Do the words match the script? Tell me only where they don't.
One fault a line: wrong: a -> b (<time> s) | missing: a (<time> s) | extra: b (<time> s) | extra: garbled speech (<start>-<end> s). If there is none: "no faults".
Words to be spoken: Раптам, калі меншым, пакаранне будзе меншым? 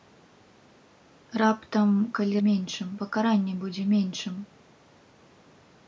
no faults